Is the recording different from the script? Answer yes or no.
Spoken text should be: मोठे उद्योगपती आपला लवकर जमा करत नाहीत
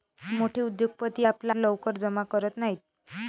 no